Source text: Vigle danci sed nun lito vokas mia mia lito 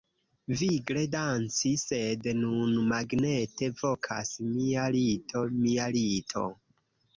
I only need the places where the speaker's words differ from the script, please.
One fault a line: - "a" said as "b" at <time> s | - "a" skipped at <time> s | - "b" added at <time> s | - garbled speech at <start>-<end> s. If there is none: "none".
- "lito" said as "magnete" at 2.9 s
- "lito" added at 5.0 s